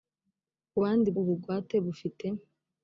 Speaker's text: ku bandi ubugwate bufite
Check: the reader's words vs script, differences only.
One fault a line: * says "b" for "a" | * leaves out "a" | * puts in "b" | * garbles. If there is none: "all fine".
all fine